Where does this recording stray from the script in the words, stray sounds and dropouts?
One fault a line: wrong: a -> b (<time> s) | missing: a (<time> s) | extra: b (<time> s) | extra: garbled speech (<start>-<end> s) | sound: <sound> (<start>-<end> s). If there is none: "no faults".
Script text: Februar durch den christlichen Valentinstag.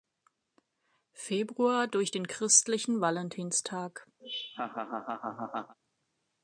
sound: laugh (4.2-5.7 s)